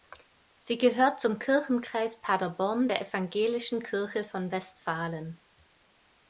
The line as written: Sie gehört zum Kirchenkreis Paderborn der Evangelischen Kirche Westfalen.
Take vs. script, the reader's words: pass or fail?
fail